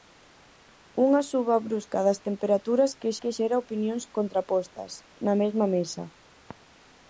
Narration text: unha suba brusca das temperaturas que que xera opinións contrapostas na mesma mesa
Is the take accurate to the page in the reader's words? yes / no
yes